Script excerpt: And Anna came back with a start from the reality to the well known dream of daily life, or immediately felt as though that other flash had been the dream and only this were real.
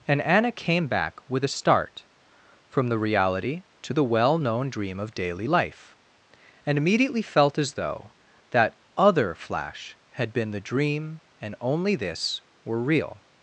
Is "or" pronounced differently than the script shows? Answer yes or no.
yes